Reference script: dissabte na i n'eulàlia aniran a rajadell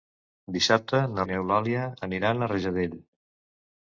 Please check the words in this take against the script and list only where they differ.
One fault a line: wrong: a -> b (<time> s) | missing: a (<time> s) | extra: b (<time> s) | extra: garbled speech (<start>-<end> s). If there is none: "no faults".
no faults